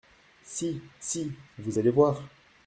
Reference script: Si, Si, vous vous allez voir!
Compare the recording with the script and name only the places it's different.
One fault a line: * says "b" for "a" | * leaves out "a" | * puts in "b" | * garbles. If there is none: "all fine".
* leaves out "vous"